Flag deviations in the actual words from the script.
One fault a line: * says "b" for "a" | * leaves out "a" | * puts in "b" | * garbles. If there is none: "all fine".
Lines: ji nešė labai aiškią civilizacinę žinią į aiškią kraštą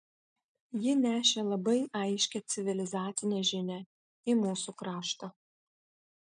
* says "mūsų" for "aiškią"